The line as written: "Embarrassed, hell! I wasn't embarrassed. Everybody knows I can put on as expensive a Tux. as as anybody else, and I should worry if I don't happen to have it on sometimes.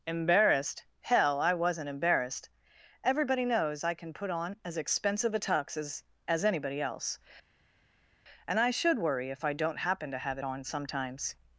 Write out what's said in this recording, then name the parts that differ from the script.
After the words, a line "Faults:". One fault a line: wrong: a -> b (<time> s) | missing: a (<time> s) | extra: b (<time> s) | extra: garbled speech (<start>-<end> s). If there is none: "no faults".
"Embarrassed, hell! I wasn't embarrassed. Everybody knows I can put on as expensive a Tux. as as anybody else, and I should worry if I don't happen to have it on sometimes.
Faults:
no faults